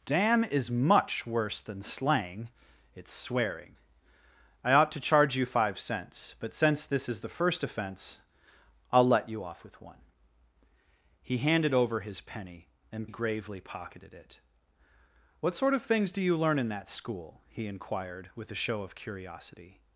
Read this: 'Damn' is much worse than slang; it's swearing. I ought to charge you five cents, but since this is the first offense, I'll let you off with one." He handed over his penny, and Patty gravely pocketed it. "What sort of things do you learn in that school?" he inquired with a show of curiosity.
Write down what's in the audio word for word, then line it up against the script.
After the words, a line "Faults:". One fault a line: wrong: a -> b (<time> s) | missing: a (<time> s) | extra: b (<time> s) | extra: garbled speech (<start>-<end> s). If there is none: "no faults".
'Damn' is much worse than slang; it's swearing. I ought to charge you five cents, but since this is the first offense, I'll let you off with one." He handed over his penny, and Gravely pocketed it. "What sort of things do you learn in that school?" he inquired with a show of curiosity.
Faults:
missing: Patty (13.1 s)